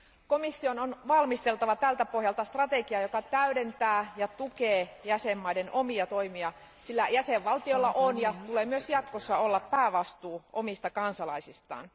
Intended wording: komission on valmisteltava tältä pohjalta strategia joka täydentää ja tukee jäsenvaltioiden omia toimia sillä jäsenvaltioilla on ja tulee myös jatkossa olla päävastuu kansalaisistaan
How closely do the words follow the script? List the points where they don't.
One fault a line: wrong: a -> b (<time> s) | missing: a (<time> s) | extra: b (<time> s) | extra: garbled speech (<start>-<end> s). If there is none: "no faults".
extra: omista (10.5 s)